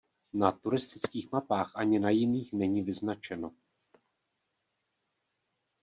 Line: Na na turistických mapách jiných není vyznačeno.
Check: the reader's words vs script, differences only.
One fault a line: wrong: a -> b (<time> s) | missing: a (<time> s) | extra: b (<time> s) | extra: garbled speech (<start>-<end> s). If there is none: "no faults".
missing: na (0.5 s)
extra: ani na (1.7 s)